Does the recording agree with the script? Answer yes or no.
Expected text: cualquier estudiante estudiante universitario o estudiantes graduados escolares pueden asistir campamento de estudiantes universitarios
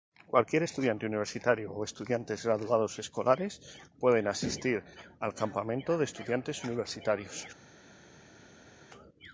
no